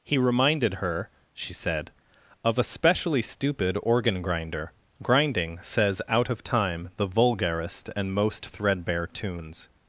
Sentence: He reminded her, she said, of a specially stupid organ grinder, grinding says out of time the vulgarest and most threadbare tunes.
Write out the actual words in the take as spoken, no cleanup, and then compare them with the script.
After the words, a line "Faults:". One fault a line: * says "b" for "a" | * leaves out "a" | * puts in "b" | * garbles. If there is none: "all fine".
He reminded her, she said, of a specially stupid organ grinder, grinding says out of time the vulgarest and most threadbare tunes.
Faults:
all fine